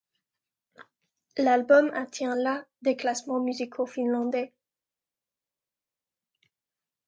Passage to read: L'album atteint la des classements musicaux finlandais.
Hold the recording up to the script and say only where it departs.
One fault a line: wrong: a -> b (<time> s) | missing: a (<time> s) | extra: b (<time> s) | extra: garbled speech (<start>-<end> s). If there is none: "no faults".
no faults